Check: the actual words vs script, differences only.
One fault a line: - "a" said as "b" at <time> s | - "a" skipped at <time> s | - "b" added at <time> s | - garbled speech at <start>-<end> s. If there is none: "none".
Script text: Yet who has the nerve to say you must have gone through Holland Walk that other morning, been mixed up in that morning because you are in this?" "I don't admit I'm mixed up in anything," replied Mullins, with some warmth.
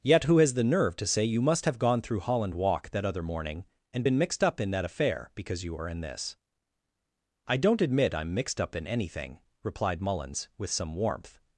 - "and" added at 3.9 s
- "morning" said as "affair" at 4.8 s